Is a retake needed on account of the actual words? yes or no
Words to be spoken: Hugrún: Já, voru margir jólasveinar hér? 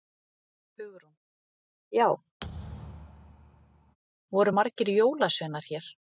no